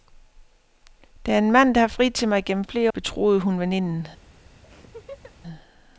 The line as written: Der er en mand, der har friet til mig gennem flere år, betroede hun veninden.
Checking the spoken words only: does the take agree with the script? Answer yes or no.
no